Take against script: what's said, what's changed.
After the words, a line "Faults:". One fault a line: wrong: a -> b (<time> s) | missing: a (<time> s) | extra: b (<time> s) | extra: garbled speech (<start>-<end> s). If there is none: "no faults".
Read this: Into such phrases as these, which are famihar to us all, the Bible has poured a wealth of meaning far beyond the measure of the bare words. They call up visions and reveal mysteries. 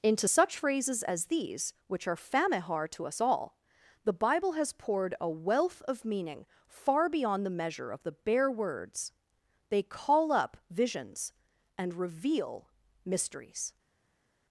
Into such phrases as these, which are famihar to us all, the Bible has poured a wealth of meaning far beyond the measure of the bare words. They call up visions and reveal mysteries.
Faults:
no faults